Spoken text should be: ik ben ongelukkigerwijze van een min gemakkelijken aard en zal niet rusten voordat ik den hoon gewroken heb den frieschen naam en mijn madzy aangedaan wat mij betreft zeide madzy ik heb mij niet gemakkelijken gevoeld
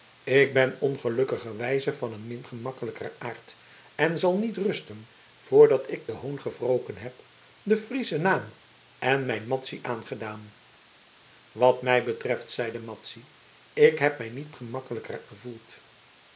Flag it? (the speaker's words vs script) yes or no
no